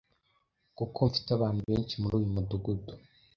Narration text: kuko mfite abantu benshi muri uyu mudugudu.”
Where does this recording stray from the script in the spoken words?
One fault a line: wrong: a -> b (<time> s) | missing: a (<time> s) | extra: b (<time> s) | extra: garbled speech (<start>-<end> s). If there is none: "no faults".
no faults